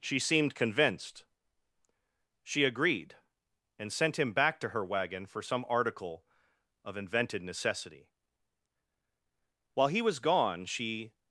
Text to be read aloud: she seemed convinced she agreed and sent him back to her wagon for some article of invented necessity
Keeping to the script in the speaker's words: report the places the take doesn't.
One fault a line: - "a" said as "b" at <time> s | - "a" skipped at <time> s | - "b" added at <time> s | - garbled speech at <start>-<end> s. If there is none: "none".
- "while he was gone she" added at 9.7 s